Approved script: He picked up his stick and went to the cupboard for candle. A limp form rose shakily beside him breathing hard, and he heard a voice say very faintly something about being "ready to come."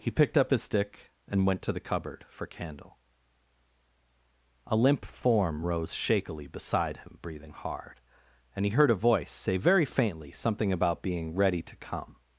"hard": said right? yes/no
yes